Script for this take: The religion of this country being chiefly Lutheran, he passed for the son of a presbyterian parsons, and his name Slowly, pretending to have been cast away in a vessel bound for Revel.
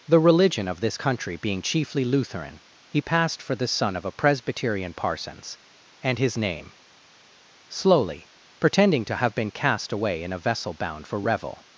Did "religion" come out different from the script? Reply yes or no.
no